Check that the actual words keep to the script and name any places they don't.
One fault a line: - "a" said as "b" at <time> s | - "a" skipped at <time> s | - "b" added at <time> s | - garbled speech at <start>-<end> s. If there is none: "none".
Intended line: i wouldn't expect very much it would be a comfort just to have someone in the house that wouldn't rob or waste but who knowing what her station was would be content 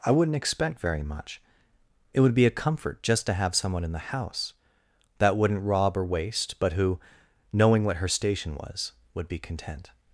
none